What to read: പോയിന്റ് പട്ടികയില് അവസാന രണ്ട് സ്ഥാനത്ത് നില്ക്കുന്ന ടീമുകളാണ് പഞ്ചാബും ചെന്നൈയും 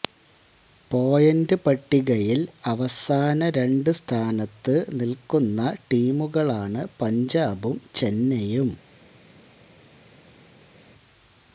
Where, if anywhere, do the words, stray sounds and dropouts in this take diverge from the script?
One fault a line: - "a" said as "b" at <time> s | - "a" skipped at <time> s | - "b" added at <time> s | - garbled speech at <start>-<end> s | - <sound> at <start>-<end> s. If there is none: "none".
none